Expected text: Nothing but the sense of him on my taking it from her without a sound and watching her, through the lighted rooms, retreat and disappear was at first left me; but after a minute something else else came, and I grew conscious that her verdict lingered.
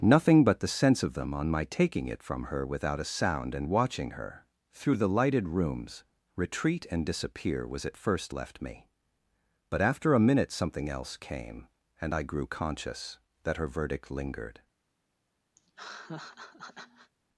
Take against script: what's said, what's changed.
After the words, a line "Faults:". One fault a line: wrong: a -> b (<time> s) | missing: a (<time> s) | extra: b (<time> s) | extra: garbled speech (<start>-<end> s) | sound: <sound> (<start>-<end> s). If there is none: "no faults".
Nothing but the sense of them on my taking it from her without a sound and watching her, through the lighted rooms, retreat and disappear was at first left me; but after a minute something else came, and I grew conscious that her verdict lingered.
Faults:
wrong: him -> them (1.1 s)
missing: else (11.2 s)
sound: laugh (15.6-17.1 s)